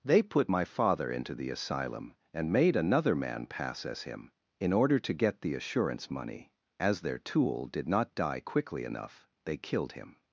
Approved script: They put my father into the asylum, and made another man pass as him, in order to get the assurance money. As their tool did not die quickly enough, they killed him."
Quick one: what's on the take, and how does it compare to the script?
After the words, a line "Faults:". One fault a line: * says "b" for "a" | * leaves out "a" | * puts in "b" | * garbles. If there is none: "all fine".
They put my father into the asylum, and made another man pass as him, in order to get the assurance money. As their tool did not die quickly enough, they killed him."
Faults:
all fine